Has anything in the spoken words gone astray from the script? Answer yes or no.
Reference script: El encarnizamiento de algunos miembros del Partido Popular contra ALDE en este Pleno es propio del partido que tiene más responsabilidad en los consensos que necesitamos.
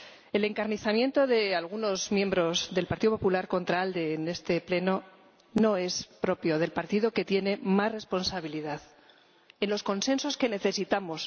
yes